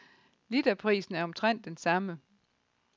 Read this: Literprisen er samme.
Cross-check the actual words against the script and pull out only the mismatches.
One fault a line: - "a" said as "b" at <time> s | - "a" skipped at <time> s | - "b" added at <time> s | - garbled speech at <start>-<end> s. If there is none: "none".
- "omtrent den" added at 1.2 s